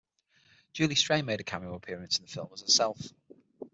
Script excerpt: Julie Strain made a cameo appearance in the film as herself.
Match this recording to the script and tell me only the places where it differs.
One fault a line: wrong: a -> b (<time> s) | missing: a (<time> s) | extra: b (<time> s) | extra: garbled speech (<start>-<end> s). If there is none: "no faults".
no faults